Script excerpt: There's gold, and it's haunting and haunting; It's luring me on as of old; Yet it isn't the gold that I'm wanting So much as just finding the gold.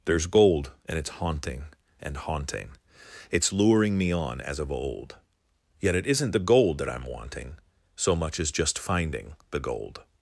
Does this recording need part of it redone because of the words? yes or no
no